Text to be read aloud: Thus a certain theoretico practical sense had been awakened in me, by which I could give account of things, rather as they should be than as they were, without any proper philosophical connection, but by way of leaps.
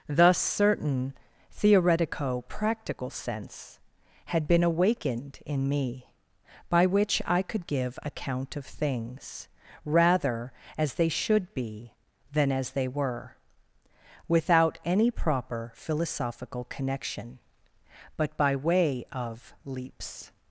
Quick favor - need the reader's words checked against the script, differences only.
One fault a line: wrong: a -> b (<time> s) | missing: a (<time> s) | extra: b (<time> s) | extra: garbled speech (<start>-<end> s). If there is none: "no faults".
missing: a (0.4 s)